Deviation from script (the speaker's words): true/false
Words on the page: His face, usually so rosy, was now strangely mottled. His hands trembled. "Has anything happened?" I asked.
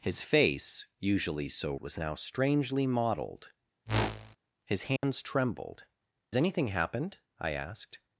true